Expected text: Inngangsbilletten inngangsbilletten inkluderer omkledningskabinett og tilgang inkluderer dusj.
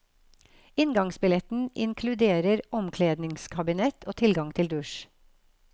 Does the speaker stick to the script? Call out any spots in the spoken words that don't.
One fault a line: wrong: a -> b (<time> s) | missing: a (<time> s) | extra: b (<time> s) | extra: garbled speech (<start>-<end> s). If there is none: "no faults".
missing: inngangsbilletten (1.7 s)
wrong: inkluderer -> til (4.6 s)